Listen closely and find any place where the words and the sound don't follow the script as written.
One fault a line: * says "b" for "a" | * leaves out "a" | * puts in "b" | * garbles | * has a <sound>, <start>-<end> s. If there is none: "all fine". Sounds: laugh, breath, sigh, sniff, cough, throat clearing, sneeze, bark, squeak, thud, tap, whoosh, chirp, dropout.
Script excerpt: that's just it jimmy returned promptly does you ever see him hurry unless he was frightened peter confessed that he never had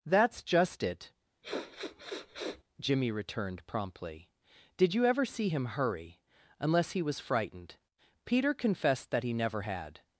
* has a sniff, 1.4-2.6 s
* says "did" for "does"